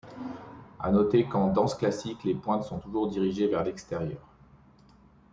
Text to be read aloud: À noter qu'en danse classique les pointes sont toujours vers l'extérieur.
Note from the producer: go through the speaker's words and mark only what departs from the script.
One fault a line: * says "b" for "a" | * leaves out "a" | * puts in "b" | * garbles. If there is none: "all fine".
* puts in "dirigées"